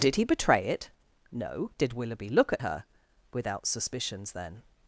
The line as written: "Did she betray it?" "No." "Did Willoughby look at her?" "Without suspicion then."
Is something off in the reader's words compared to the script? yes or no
yes